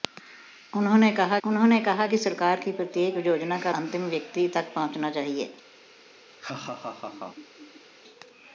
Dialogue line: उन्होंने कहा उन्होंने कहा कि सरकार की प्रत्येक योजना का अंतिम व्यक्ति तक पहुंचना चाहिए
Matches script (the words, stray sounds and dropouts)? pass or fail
fail